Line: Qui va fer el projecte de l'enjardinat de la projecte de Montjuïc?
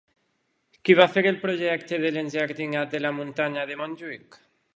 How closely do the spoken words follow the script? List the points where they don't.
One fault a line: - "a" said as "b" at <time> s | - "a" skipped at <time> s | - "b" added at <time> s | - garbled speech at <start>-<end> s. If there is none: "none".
- "projecte" said as "muntanya" at 3.2 s